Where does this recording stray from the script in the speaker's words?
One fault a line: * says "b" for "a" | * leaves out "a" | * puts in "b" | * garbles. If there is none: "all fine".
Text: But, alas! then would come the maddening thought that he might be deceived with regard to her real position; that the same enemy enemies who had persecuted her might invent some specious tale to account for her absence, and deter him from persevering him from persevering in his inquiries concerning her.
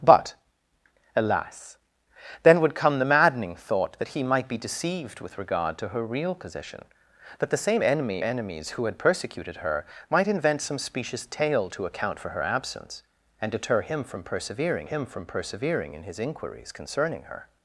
all fine